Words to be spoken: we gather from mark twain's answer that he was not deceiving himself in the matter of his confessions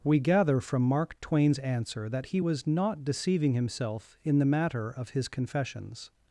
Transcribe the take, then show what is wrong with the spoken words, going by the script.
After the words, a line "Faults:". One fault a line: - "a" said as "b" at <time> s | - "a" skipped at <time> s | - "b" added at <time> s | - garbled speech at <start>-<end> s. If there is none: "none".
we gather from mark twain's answer that he was not deceiving himself in the matter of his confessions
Faults:
none